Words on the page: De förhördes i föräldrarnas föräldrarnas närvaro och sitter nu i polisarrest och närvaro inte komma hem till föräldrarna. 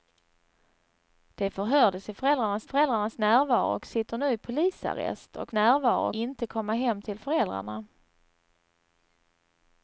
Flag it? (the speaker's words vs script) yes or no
no